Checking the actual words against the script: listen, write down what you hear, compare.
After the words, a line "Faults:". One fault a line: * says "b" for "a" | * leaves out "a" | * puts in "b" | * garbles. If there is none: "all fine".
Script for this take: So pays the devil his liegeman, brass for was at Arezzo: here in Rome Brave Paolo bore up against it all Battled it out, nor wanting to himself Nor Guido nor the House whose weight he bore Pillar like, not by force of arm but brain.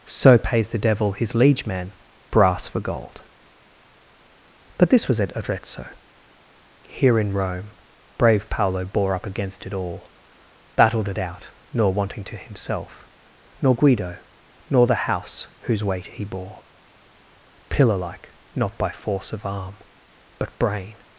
So pays the devil his liegeman, brass for gold. But this was at Arezzo: here in Rome Brave Paolo bore up against it all Battled it out, nor wanting to himself Nor Guido nor the House whose weight he bore Pillar like, not by force of arm but brain.
Faults:
* puts in "gold But this"